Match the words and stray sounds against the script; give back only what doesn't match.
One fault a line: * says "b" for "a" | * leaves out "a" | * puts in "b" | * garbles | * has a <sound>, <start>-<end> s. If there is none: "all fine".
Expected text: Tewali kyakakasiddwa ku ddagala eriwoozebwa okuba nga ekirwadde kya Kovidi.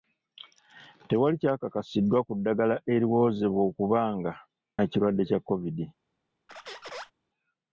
* has a squeak, 6.5-7.1 s